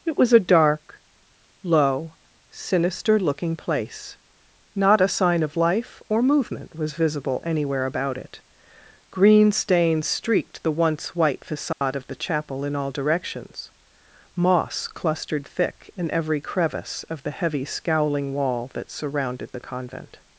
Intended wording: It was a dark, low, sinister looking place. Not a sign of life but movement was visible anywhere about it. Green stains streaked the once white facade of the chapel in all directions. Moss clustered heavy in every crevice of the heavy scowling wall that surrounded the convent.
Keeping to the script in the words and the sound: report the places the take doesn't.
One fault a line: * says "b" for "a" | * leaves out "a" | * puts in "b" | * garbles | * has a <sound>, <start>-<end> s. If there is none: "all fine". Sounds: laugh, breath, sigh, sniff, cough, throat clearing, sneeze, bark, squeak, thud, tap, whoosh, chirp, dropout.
* says "or" for "but"
* has a dropout, 11.7-11.8 s
* says "thick" for "heavy"